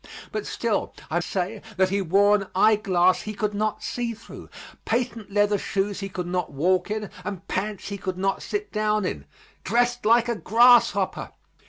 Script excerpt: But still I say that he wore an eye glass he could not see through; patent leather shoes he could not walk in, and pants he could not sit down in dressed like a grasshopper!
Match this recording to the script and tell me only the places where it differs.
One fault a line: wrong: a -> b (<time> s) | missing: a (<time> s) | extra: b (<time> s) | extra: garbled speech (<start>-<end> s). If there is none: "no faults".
no faults